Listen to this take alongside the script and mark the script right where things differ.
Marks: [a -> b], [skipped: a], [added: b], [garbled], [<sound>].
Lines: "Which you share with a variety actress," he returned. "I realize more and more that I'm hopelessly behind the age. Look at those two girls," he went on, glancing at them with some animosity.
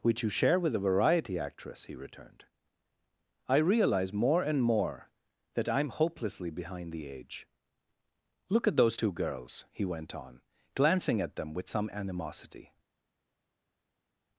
"Which you share with a variety actress," he returned. "I realize more and more that I'm hopelessly behind the age. Look at those two girls," he went on, glancing at them with some animosity.